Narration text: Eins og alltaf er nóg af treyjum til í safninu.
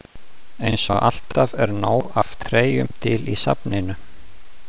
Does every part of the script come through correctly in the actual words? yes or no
yes